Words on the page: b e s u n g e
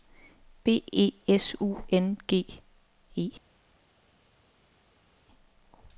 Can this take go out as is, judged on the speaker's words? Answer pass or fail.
pass